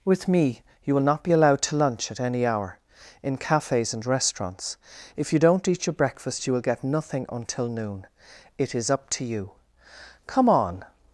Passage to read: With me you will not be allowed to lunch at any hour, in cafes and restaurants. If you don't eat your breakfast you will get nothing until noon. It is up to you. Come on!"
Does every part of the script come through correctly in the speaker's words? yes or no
yes